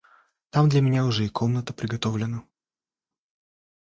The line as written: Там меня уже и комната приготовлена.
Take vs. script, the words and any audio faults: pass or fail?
fail